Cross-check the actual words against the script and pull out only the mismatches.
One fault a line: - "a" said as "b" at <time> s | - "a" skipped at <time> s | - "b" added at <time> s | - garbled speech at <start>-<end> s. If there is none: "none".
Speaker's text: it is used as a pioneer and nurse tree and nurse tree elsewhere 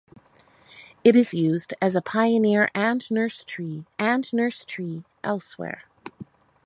none